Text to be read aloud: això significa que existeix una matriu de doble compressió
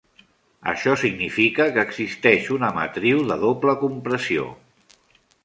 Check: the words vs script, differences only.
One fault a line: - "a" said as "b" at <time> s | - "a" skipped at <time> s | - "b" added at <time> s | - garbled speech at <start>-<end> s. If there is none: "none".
none